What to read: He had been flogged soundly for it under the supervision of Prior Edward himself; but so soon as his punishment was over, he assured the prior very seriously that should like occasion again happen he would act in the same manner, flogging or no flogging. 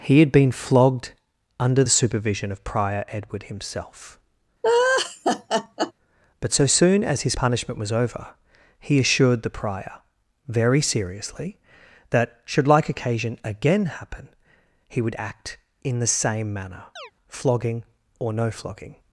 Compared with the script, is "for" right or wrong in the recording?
wrong